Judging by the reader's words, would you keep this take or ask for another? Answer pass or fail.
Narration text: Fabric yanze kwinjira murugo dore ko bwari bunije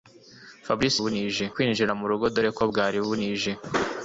fail